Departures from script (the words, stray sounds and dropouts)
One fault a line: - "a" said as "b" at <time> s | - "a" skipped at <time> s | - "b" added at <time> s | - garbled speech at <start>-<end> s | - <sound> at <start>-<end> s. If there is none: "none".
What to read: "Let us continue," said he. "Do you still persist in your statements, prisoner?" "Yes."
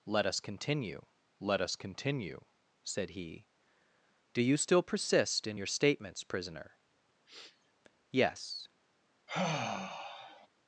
- "let us continue" added at 1.4 s
- sniff at 7.3-7.7 s
- sigh at 9.3-10.5 s